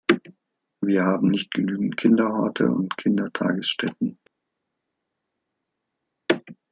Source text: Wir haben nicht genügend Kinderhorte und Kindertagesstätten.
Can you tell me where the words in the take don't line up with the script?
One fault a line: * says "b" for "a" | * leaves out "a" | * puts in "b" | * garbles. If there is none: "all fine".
all fine